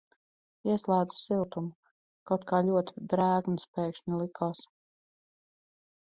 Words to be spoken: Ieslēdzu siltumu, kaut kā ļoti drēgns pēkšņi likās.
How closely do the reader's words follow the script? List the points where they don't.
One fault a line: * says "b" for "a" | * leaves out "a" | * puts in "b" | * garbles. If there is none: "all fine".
all fine